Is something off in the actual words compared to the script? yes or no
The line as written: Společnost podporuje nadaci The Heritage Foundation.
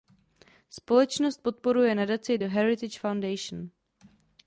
no